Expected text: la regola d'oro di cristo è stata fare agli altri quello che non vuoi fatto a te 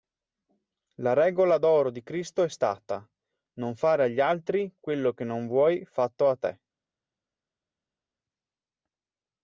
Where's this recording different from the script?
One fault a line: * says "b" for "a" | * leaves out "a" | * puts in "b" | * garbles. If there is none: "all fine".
* puts in "non"